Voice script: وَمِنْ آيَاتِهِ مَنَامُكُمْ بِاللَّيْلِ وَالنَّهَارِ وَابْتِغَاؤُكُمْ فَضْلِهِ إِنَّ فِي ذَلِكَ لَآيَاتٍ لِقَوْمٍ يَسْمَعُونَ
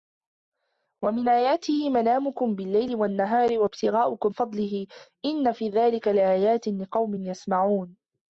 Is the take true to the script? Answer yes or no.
yes